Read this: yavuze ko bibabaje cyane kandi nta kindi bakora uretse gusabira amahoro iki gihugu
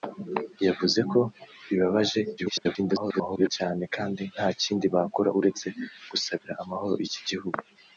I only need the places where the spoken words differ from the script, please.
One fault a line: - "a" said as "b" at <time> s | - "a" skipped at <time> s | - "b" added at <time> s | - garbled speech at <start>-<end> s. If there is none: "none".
- garbled speech at 2.4-3.5 s